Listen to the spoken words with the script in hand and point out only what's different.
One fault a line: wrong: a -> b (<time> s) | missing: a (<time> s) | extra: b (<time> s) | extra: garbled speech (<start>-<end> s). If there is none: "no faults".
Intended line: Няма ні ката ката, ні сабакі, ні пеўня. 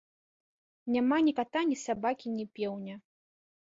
missing: ката (1.7 s)